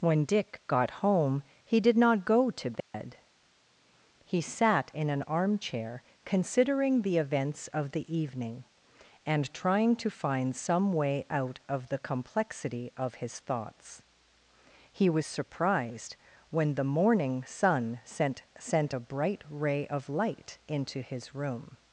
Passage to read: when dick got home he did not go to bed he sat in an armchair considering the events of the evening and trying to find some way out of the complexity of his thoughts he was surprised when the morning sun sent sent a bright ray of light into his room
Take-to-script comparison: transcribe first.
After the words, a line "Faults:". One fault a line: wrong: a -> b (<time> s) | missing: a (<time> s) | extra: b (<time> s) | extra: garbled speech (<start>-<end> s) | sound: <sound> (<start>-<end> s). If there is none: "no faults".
when dick got home he did not go to bed he sat in an armchair considering the events of the evening and trying to find some way out of the complexity of his thoughts he was surprised when the morning sun sent sent a bright ray of light into his room
Faults:
sound: dropout (2.8-2.9 s)